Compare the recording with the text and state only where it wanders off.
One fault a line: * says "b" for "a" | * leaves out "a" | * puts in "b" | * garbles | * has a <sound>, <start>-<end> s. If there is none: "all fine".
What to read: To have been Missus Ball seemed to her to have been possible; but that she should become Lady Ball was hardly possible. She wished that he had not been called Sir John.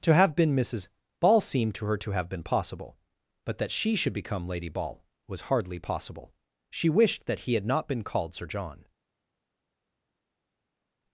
all fine